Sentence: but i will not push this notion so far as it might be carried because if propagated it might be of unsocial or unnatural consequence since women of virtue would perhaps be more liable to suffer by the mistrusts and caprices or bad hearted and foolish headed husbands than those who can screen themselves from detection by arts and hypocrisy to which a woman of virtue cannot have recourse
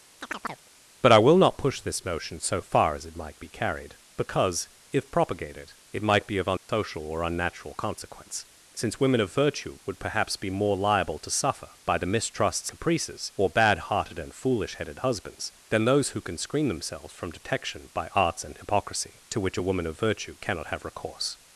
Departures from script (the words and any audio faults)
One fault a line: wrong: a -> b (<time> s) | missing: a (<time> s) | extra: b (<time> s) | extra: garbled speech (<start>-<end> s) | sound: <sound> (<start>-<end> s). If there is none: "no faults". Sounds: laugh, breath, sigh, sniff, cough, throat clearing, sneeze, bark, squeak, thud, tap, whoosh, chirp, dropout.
sound: chirp (0.2-0.7 s)
sound: dropout (6.6-6.7 s)
missing: and (12.7 s)